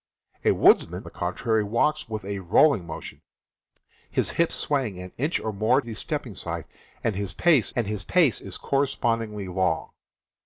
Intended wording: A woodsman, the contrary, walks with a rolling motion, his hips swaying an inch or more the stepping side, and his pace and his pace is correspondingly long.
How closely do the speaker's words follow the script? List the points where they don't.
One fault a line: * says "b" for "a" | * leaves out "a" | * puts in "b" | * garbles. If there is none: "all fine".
all fine